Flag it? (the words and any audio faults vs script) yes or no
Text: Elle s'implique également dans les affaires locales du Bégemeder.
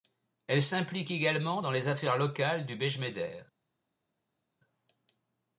no